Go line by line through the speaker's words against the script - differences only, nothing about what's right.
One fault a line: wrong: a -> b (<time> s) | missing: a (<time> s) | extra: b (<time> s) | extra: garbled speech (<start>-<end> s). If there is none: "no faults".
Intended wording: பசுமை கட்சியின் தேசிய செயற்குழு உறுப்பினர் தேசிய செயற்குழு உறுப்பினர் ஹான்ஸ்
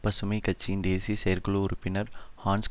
missing: தேசிய செயற்குழு உறுப்பினர் (2.1 s)